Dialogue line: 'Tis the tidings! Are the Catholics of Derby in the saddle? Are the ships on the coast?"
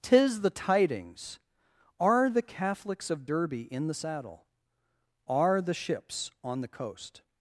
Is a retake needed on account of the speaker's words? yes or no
no